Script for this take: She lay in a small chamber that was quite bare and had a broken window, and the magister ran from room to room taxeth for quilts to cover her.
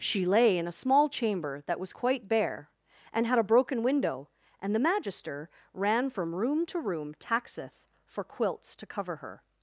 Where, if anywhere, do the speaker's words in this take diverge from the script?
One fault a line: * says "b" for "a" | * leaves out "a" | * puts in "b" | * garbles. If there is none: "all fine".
all fine